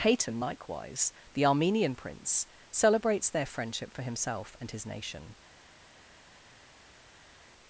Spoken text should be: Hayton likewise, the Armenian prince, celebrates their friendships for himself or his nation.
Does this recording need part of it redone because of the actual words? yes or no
yes